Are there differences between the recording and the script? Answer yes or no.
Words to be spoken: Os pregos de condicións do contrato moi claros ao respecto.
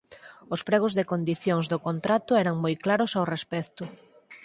yes